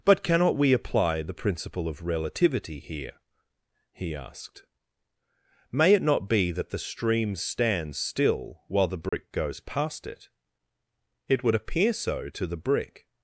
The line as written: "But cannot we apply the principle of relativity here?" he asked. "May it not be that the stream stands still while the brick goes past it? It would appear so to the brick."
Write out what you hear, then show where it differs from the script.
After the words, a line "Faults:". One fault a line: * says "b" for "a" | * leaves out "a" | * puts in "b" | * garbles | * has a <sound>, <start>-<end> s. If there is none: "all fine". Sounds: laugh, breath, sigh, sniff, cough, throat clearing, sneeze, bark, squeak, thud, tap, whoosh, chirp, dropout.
"But cannot we apply the principle of relativity here?" he asked. "May it not be that the stream stands still while the brick goes past it? It would appear so to the brick."
Faults:
* has a dropout, 9.1-9.1 s